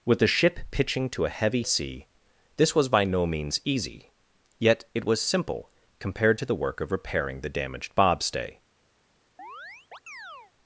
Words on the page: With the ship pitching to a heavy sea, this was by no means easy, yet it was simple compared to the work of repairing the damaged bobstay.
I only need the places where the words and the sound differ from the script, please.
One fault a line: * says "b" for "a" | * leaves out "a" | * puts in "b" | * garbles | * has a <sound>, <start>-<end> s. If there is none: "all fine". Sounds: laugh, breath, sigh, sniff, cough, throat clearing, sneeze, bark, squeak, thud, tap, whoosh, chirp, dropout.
* has a chirp, 9.4-10.5 s